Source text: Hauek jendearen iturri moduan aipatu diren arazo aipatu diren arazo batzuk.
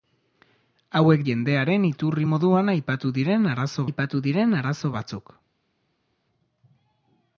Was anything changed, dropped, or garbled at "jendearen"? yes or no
no